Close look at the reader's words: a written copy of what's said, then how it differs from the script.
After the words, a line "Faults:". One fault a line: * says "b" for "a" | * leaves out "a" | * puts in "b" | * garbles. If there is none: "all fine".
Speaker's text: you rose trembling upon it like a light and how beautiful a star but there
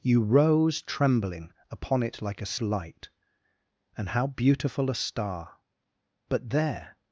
you rose trembling upon it like a light and how beautiful a star but there
Faults:
all fine